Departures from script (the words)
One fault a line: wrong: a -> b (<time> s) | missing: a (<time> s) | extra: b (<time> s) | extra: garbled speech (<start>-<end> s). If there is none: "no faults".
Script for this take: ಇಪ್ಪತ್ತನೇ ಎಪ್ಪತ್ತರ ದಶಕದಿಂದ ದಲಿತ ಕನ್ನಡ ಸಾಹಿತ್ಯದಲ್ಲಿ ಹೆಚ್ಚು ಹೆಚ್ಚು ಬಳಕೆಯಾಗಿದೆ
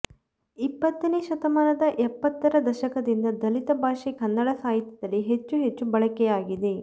extra: ಶತಮಾನದ (1.2 s)
extra: ಭಾಷೆ (3.8 s)